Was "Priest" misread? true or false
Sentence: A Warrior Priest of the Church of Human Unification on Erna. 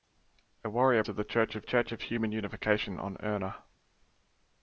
true